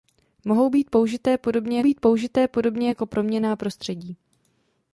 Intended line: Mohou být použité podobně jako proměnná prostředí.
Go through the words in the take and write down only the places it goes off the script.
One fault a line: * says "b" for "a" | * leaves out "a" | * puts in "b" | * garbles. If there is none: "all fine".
* puts in "být použité podobně"